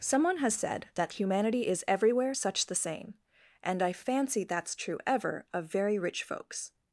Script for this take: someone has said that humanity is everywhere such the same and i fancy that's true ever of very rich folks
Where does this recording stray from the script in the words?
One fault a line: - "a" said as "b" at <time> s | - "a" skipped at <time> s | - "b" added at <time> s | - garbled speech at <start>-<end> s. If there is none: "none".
none